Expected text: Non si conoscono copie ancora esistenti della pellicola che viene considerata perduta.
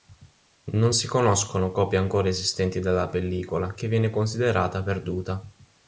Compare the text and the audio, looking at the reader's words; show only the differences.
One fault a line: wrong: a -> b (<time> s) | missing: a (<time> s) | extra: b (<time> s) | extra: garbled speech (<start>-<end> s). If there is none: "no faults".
no faults